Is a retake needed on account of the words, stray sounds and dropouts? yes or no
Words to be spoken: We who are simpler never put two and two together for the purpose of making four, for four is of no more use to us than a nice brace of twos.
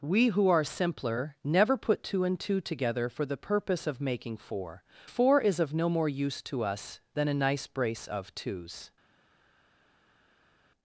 yes